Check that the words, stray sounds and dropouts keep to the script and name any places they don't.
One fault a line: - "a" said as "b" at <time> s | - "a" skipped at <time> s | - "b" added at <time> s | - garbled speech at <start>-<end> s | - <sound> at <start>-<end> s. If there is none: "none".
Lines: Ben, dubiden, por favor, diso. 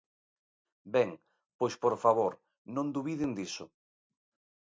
- "dubiden" said as "pois" at 1.6 s
- "non dubiden" added at 2.8 s